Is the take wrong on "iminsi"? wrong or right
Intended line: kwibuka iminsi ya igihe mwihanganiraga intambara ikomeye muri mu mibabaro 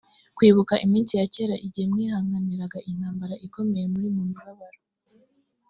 right